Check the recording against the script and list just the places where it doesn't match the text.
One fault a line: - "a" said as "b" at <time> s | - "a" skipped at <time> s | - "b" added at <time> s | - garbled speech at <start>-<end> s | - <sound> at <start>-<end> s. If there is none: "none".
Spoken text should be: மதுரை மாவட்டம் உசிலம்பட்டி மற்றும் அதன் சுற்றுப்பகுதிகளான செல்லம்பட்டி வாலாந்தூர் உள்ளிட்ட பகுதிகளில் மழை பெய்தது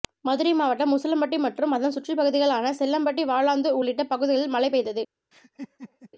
- laugh at 5.3-6.1 s